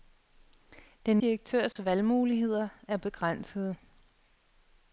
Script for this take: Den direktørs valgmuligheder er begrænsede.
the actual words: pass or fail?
pass